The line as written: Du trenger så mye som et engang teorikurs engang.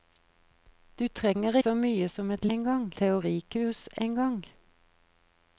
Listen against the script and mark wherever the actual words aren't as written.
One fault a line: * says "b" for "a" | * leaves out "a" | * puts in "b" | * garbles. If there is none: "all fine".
all fine